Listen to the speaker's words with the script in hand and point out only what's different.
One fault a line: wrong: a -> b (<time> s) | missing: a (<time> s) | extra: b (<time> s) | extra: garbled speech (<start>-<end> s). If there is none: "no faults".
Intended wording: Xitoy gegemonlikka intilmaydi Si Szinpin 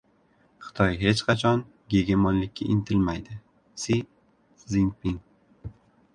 extra: hech qachon (1.0 s)